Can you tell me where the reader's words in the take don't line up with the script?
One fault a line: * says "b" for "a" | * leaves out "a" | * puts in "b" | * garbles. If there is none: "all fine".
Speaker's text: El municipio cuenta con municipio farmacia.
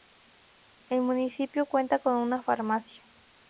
* says "una" for "municipio"